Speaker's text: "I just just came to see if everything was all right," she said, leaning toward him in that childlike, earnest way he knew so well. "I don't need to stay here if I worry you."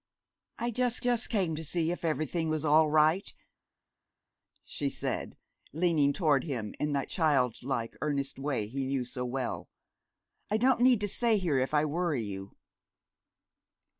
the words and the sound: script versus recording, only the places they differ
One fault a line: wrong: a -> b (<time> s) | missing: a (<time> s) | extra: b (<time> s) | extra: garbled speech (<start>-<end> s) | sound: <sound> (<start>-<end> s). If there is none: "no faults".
no faults